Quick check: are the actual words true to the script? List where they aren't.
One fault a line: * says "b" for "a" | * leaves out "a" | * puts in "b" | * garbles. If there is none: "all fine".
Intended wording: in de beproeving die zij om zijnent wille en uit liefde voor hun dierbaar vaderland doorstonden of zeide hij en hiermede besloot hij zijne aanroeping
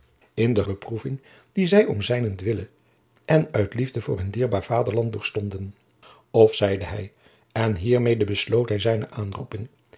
all fine